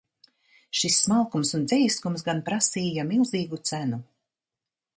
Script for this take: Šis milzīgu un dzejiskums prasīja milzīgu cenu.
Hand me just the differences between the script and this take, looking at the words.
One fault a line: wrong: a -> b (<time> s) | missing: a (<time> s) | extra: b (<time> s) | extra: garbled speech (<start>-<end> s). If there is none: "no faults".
wrong: milzīgu -> smalkums (1.0 s)
extra: gan (2.3 s)